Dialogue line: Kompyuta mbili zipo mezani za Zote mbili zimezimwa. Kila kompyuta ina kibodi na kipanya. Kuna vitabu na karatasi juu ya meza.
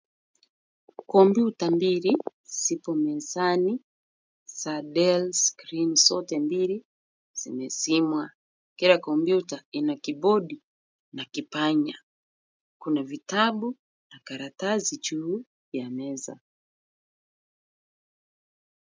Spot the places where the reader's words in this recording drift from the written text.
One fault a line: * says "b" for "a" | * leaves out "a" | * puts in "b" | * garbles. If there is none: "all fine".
* puts in "DELL Screen"